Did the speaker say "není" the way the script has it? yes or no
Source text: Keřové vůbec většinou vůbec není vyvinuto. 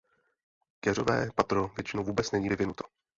yes